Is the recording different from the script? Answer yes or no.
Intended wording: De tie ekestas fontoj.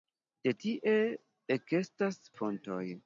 no